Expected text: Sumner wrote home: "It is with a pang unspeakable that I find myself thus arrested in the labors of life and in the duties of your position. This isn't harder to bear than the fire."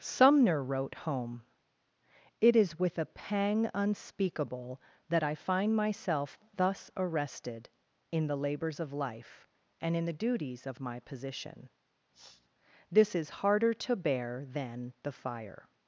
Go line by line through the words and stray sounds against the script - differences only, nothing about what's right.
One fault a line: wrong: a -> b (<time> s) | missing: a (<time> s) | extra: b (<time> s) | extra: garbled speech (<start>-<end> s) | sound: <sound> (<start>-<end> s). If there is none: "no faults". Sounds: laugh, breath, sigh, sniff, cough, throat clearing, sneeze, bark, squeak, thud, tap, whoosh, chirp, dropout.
wrong: your -> my (10.8 s)
sound: sniff (12.1-12.5 s)
wrong: isn't -> is (13.2 s)